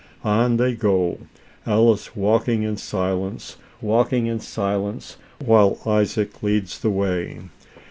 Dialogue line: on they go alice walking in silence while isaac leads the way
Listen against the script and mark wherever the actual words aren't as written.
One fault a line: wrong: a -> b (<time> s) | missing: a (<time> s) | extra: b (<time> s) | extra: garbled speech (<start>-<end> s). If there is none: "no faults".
extra: walking in silence (3.8 s)